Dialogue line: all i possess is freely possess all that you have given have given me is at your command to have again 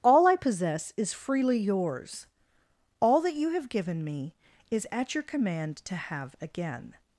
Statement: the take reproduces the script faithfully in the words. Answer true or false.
false